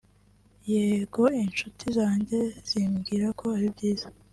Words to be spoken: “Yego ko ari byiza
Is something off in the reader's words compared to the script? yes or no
yes